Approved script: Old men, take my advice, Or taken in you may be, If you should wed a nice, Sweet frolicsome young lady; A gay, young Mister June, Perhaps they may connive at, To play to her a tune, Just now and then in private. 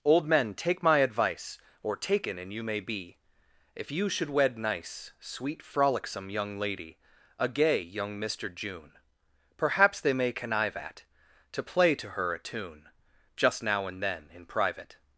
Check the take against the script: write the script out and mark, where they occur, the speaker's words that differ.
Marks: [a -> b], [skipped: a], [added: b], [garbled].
Old men, take my advice, Or taken [in -> and] you may be, If you should wed [skipped: a] nice, Sweet frolicsome young lady; A gay, young Mister June, Perhaps they may connive at, To play to her a tune, Just now and then in private.